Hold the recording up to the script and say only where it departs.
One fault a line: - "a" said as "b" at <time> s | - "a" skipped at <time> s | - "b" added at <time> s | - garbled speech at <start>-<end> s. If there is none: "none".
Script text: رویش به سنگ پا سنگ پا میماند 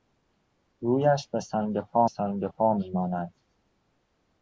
none